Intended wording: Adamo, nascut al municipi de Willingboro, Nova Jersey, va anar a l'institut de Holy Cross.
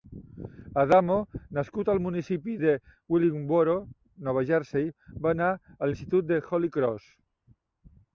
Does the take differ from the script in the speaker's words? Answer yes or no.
no